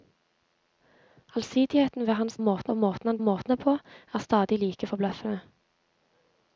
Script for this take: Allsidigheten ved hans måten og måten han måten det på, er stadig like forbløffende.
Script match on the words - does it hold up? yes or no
yes